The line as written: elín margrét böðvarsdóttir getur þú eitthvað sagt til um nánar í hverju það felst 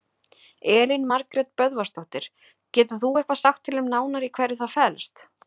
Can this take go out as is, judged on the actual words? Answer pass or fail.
pass